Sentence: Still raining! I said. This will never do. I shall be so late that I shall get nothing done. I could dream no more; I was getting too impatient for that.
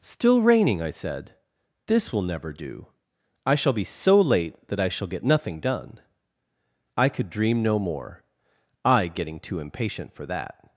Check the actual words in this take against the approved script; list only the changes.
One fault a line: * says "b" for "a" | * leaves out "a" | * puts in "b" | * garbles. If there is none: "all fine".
* leaves out "was"